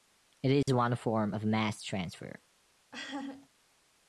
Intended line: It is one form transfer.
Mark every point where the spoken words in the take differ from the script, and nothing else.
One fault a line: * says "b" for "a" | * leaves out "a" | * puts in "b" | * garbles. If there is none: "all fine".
* puts in "of mass"